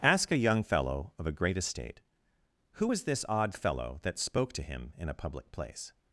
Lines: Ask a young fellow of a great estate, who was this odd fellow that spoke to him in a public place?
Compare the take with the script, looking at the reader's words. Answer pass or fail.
pass